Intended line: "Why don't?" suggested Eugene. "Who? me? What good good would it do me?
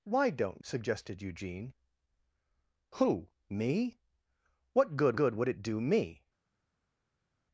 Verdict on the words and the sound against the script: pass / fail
pass